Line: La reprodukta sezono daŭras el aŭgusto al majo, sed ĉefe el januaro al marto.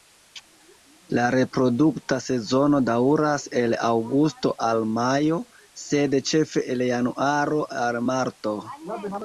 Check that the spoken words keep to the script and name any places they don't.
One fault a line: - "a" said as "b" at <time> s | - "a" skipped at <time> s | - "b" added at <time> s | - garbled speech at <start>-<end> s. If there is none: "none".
none